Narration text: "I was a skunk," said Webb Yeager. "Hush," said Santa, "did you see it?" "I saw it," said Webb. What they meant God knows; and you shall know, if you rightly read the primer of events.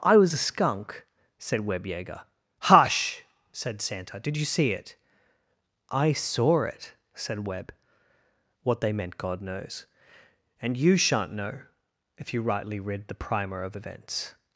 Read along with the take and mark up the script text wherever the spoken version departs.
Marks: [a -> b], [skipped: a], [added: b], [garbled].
"I was a skunk," said Webb Yeager. "Hush," said Santa, "did you see it?" "I saw it," said Webb. What they meant God knows; and you [shall -> shan't] know, if you rightly read the primer of events.